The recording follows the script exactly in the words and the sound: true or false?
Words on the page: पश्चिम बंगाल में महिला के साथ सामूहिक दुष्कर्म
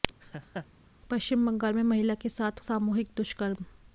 false